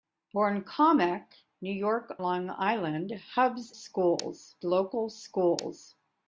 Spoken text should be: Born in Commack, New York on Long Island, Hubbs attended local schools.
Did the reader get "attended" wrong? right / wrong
wrong